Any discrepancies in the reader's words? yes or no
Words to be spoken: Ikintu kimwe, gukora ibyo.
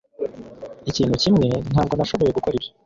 yes